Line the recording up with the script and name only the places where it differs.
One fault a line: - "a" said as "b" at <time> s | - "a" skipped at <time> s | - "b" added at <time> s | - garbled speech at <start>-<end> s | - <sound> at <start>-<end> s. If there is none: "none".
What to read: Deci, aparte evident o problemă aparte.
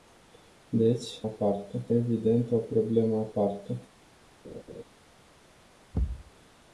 - laugh at 4.4-4.8 s
- thud at 5.9-6.3 s